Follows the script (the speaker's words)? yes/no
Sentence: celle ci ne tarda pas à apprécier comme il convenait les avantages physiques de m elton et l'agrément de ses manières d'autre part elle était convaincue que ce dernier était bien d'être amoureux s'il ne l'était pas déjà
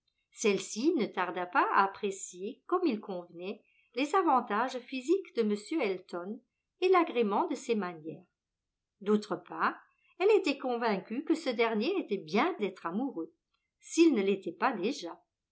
yes